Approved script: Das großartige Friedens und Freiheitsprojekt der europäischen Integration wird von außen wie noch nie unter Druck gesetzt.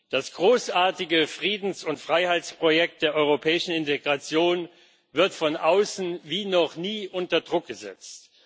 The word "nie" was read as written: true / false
true